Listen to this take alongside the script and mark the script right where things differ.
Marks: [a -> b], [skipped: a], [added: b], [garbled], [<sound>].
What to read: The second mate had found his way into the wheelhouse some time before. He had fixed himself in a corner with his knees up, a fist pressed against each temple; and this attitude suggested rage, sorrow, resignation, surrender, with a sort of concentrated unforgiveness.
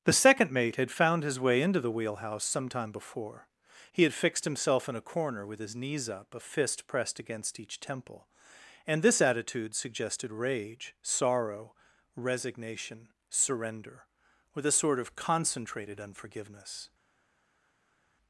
The second mate had found his way into the wheelhouse some time before. He had fixed himself in a corner with his knees up, a fist pressed against each temple; and this attitude suggested rage, sorrow, resignation, surrender, with a sort of concentrated unforgiveness.